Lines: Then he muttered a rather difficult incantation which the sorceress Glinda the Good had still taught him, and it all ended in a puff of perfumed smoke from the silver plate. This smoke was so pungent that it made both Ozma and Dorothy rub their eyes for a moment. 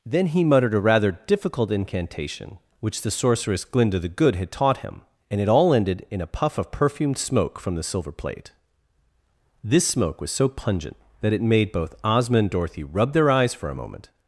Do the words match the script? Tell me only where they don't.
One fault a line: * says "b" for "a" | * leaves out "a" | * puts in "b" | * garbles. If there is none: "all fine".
* leaves out "still"